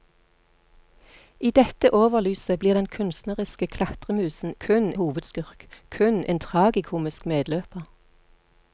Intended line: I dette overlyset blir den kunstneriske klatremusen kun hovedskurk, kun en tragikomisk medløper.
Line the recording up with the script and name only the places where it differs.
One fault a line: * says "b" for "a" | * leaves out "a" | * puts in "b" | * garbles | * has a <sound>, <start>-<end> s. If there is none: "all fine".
all fine